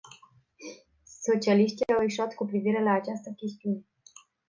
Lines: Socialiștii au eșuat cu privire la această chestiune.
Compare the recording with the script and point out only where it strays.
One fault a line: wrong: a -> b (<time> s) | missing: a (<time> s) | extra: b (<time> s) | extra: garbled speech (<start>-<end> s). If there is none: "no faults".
no faults